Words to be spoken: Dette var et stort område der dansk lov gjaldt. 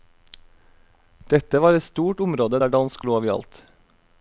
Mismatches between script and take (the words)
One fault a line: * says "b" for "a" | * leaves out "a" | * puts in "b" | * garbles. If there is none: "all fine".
all fine